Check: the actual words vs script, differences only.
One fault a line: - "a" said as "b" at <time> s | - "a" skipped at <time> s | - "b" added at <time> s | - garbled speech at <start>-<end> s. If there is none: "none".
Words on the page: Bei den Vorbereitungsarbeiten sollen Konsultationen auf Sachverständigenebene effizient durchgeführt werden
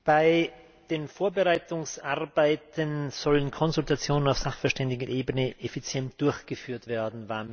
none